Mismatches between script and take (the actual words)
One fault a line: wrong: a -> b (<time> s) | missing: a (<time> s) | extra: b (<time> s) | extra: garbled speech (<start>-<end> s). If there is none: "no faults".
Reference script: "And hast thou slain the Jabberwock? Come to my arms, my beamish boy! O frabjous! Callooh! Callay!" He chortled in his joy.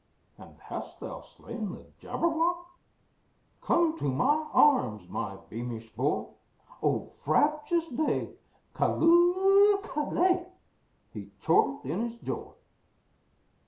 extra: day (7.9 s)